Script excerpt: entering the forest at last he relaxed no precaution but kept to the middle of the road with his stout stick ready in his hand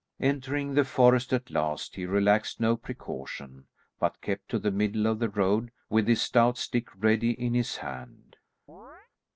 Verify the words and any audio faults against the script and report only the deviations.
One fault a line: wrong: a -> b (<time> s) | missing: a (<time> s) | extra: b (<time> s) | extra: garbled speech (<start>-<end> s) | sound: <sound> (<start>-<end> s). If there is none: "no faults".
sound: chirp (8.7-9.1 s)